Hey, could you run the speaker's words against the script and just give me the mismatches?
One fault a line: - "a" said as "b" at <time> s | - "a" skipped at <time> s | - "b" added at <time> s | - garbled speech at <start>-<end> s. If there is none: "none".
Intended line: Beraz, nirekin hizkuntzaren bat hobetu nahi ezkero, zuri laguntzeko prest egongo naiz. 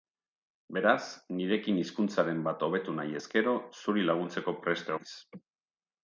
- "egongo" skipped at 4.9 s